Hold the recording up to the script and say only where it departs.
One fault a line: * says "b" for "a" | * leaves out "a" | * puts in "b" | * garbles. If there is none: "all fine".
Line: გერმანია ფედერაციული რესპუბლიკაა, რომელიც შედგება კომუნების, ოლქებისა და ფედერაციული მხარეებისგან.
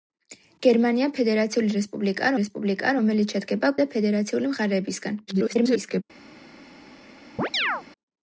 * puts in "რესპუბლიკაა"
* leaves out "კომუნების ოლქებისა"
* garbles